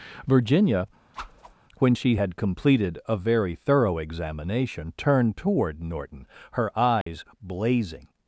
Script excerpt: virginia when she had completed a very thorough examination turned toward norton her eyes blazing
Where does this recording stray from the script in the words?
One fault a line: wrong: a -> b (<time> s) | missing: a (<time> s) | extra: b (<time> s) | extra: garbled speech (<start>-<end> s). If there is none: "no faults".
no faults